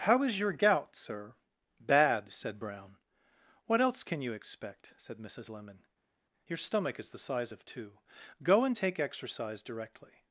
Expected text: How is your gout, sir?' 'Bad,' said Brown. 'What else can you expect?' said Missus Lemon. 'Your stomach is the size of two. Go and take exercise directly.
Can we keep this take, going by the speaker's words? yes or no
yes